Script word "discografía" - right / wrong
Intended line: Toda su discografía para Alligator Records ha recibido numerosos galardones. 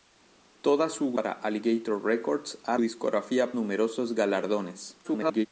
wrong